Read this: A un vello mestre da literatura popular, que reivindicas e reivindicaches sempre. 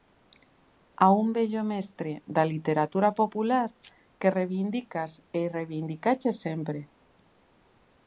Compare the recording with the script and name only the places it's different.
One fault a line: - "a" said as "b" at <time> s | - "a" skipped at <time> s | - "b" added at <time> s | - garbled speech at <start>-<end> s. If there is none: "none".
none